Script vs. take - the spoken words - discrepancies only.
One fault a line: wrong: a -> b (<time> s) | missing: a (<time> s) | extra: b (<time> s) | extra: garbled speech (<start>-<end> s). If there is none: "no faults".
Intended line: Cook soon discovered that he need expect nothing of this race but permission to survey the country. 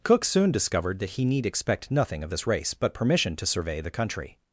no faults